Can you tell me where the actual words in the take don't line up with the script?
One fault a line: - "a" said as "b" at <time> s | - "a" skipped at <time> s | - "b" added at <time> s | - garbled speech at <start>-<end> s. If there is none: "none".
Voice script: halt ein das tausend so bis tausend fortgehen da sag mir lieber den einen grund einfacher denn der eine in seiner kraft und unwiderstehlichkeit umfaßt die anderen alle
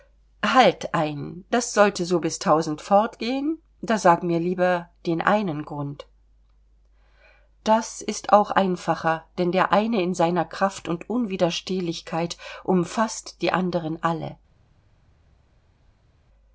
- "tausend" said as "sollte" at 1.7 s
- "das ist auch" added at 7.6 s